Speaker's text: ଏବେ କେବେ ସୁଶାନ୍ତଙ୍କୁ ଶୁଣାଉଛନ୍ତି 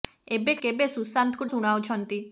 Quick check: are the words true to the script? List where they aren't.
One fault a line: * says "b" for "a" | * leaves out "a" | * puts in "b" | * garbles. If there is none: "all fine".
all fine